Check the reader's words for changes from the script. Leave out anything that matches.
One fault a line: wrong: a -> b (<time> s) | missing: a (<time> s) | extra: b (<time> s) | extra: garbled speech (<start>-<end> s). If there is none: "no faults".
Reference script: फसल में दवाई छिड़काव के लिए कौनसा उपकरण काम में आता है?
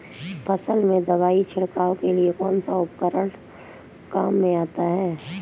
no faults